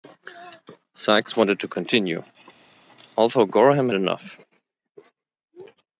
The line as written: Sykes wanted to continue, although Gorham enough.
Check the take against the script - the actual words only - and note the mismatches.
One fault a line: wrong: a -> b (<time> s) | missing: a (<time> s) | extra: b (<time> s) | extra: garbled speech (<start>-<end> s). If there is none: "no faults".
no faults